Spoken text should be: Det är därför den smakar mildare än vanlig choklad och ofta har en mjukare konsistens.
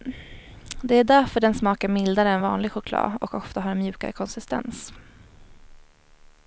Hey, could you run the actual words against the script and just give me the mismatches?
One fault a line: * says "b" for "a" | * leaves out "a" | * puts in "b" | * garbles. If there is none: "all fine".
all fine